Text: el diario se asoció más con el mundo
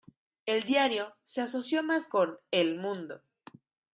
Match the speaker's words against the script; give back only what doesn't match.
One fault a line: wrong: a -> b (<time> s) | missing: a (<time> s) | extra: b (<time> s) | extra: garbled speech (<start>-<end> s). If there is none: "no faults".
no faults